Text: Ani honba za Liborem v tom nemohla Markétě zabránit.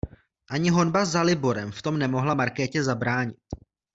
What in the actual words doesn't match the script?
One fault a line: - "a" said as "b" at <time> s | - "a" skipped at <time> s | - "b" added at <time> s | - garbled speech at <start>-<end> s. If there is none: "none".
none